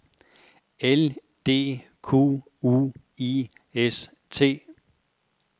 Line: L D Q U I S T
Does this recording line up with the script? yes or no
yes